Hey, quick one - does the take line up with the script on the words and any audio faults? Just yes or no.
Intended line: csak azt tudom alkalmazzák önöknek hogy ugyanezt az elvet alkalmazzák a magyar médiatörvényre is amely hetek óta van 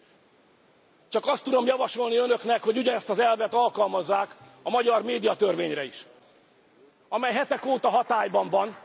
no